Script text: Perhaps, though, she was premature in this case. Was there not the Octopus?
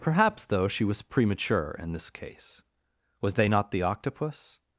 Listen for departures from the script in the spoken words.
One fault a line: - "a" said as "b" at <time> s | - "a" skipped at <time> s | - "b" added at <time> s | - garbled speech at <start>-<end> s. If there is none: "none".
- "there" said as "they" at 3.4 s